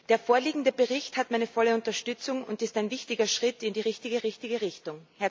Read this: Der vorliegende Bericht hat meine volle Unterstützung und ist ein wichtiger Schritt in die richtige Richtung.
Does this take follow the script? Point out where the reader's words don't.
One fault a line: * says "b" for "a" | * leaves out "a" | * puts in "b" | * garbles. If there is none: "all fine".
* puts in "richtige"